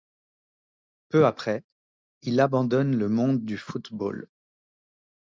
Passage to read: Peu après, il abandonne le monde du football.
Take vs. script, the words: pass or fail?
pass